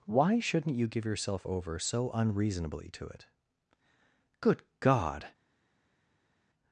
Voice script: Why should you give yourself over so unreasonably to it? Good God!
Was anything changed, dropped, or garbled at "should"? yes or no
yes